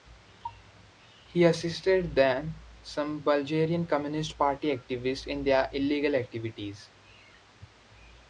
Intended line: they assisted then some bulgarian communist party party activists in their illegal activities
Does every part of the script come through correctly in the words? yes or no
no